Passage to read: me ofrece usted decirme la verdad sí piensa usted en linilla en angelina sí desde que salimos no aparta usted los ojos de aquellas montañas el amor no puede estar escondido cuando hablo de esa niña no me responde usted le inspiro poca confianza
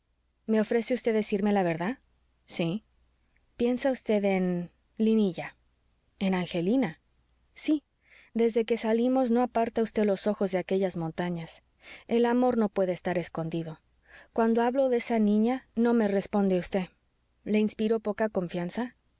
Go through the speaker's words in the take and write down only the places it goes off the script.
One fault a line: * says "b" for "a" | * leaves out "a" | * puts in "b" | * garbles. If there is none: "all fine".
all fine